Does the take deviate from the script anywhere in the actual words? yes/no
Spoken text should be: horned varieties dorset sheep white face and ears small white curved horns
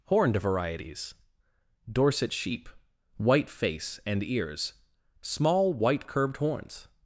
no